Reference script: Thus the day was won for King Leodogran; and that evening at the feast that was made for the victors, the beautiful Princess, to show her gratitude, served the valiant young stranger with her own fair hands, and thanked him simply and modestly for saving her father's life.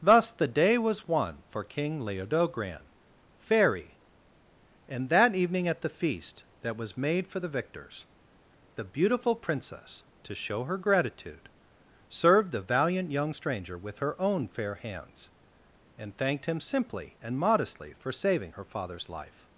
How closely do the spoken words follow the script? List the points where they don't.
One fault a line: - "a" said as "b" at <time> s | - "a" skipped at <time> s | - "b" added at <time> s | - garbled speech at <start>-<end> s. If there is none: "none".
- "fairy" added at 3.4 s